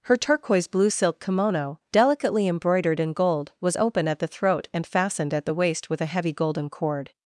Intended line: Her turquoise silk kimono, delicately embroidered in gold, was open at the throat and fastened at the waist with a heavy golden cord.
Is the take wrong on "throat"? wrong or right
right